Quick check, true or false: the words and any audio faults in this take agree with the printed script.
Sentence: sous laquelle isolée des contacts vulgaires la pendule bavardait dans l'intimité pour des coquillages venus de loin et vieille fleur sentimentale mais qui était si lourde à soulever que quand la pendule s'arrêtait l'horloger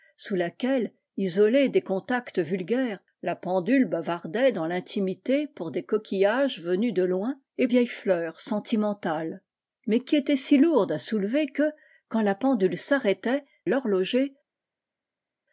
true